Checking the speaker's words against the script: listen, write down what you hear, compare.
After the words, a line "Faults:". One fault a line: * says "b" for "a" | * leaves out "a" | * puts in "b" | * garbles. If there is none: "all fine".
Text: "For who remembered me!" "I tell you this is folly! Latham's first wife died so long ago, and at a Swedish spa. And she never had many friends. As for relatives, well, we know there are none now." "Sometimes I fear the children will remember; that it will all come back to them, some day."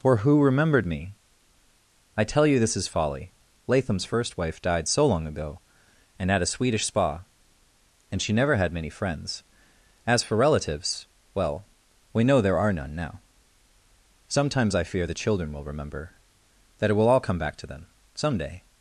"For who remembered me!" "I tell you this is folly! Latham's first wife died so long ago, and at a Swedish spa. And she never had many friends. As for relatives, well, we know there are none now." "Sometimes I fear the children will remember; that it will all come back to them, some day."
Faults:
all fine